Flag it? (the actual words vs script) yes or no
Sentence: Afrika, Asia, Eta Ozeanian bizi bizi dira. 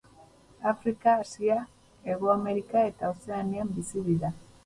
yes